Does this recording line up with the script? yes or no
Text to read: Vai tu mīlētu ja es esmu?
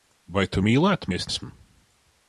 yes